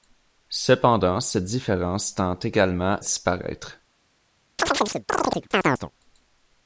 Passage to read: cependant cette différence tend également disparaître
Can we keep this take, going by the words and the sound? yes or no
no